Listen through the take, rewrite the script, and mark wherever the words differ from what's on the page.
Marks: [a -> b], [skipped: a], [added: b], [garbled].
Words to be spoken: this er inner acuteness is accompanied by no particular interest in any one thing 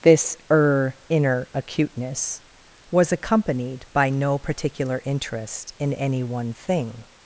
this er inner acuteness [is -> was] accompanied by no particular interest in any one thing